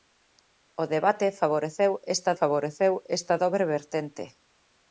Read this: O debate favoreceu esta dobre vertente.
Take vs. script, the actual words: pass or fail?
fail